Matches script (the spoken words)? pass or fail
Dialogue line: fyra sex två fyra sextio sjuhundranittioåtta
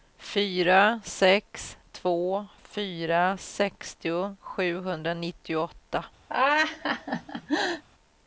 pass